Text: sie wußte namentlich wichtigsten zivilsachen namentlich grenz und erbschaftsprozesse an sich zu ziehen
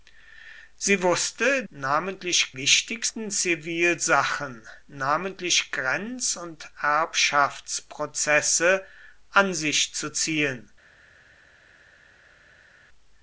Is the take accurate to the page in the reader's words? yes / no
yes